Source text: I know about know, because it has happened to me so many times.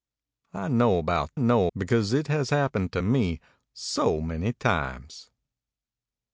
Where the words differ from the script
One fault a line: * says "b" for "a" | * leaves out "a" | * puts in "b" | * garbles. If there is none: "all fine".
all fine